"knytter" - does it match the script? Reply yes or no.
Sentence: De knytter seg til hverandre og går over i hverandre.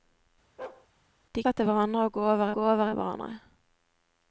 no